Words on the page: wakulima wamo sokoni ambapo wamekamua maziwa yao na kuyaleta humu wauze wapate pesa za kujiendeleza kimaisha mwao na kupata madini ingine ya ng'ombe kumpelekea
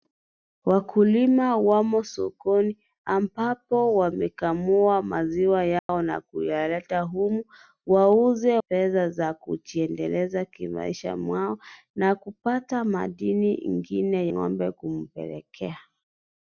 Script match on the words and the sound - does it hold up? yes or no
no